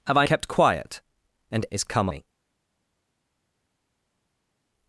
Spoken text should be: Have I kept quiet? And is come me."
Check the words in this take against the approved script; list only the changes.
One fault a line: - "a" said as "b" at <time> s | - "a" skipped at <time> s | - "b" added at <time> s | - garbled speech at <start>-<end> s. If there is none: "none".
none